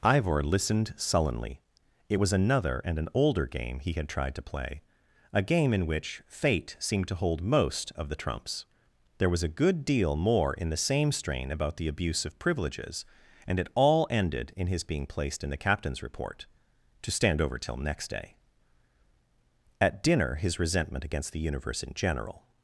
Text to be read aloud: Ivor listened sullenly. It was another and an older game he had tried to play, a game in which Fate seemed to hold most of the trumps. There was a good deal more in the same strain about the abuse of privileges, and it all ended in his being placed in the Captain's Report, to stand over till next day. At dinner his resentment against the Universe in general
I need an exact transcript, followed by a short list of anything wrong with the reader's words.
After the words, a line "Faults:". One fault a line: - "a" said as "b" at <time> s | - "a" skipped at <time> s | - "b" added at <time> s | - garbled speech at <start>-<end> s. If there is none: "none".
Ivor listened sullenly. It was another and an older game he had tried to play, a game in which Fate seemed to hold most of the trumps. There was a good deal more in the same strain about the abuse of privileges, and it all ended in his being placed in the Captain's Report, to stand over till next day. At dinner his resentment against the Universe in general
Faults:
none